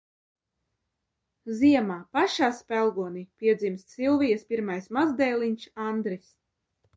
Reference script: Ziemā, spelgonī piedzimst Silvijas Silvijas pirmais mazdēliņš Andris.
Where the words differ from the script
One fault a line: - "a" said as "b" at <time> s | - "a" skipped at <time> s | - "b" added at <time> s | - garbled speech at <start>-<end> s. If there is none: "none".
- "pašā" added at 2.2 s
- "Silvijas" skipped at 4.5 s